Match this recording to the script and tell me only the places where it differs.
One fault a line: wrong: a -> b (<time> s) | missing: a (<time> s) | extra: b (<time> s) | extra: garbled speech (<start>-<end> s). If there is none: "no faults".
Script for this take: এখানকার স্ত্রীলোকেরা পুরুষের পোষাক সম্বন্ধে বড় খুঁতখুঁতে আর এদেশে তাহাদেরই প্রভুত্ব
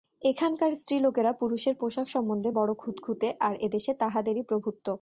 no faults